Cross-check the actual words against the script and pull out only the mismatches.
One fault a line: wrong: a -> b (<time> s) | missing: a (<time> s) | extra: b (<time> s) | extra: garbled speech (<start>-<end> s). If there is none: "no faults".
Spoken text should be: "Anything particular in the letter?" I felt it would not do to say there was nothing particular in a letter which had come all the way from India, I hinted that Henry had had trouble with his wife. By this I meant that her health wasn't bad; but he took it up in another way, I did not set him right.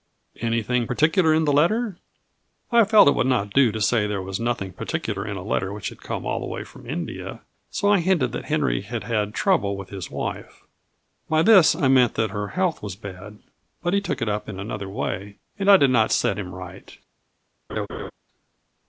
extra: so (7.7 s)
wrong: wasn't -> was (12.8 s)
extra: and (15.6 s)